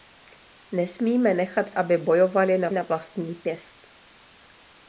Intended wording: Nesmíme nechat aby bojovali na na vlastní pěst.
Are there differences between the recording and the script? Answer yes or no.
no